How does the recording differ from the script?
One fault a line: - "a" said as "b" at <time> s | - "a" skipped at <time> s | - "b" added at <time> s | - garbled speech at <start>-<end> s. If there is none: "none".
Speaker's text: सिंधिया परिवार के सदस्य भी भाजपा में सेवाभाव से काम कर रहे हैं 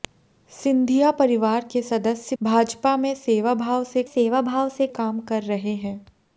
- "भी" skipped at 2.4 s
- "सेवाभाव से" added at 4.0 s